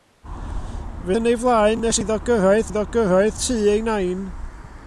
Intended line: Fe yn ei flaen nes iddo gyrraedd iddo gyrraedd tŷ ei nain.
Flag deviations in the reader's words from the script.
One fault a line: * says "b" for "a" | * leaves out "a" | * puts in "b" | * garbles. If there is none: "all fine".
all fine